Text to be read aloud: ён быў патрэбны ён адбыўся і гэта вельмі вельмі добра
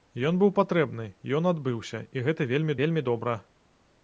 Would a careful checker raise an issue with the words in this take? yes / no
no